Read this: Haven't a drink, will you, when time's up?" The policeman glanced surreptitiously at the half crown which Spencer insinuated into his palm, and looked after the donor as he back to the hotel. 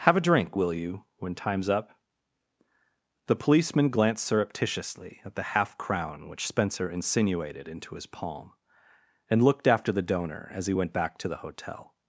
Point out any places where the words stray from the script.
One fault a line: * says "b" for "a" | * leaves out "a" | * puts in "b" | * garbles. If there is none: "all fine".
* says "Have" for "Haven't"
* puts in "went"